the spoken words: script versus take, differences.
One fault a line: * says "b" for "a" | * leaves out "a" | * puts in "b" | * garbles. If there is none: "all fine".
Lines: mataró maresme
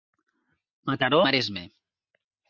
all fine